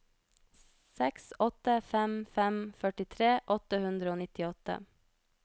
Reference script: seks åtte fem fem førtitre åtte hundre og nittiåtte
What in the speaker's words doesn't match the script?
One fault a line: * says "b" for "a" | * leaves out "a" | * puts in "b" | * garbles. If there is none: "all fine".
all fine